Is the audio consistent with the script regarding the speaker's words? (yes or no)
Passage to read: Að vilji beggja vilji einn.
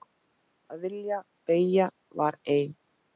no